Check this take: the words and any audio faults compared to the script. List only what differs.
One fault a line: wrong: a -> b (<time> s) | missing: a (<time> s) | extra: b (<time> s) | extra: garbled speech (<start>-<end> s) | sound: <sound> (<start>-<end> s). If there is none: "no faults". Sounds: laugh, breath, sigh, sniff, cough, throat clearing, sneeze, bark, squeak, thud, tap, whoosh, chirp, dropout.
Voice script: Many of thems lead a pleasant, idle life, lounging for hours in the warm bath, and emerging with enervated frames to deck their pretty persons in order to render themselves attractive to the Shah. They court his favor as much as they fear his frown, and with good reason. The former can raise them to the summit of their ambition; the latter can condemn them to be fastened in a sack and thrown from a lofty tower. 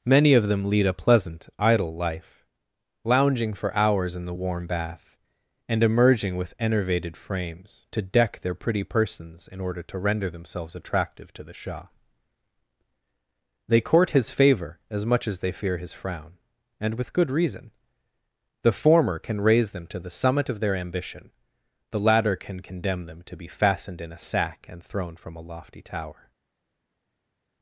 wrong: thems -> them (0.5 s)